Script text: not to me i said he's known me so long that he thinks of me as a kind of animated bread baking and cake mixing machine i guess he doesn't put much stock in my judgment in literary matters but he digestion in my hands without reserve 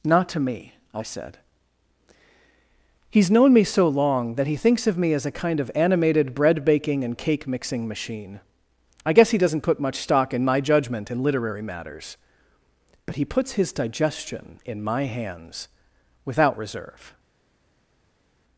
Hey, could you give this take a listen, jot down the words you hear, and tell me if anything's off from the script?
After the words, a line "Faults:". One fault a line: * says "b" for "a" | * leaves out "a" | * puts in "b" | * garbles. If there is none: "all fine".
not to me i said he's known me so long that he thinks of me as a kind of animated bread baking and cake mixing machine i guess he doesn't put much stock in my judgment in literary matters but he puts his digestion in my hands without reserve
Faults:
* puts in "puts his"